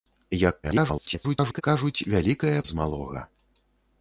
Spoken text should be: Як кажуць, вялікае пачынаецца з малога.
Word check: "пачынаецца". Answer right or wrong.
wrong